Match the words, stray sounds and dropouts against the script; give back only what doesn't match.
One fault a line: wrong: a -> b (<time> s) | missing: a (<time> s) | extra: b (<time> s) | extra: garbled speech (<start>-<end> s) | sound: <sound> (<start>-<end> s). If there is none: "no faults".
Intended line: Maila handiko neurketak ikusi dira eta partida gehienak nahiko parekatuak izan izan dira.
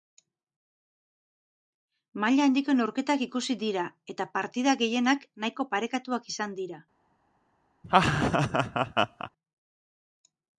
missing: izan (6.6 s)
sound: laugh (7.8-9.3 s)